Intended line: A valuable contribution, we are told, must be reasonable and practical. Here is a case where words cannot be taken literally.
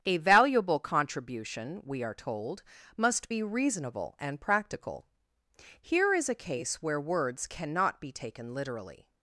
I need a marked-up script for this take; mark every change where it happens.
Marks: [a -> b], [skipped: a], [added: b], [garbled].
A valuable contribution, we are told, must be reasonable and practical. Here is a case where words cannot be taken literally.